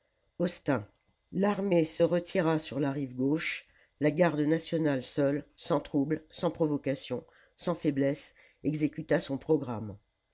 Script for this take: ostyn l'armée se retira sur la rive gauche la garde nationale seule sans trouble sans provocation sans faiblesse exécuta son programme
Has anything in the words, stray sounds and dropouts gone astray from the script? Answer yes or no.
no